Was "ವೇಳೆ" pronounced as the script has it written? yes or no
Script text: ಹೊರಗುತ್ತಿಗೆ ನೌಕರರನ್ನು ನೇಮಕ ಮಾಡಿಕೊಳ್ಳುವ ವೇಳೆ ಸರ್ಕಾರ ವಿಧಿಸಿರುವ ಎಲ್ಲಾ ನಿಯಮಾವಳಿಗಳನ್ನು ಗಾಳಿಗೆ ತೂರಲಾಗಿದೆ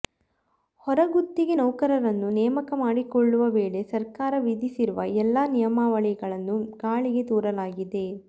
yes